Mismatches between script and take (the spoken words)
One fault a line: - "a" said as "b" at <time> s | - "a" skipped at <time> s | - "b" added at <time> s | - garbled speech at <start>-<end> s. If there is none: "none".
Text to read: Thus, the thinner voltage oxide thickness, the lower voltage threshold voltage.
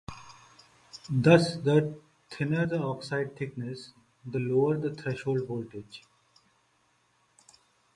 - "voltage" said as "the" at 2.6 s
- "voltage" said as "the" at 4.8 s